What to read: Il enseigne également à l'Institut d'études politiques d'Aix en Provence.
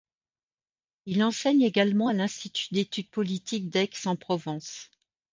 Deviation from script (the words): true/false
false